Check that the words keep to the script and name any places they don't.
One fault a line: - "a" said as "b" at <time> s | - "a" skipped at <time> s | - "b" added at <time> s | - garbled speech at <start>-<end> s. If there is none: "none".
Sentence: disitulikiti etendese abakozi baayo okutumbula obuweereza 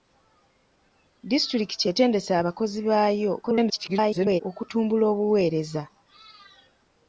- garbled speech at 3.4-4.4 s